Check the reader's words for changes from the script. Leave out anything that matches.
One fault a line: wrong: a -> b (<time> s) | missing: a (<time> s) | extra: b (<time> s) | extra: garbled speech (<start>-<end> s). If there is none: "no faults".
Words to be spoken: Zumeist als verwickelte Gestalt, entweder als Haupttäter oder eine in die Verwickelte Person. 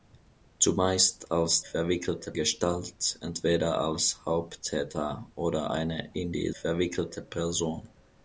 no faults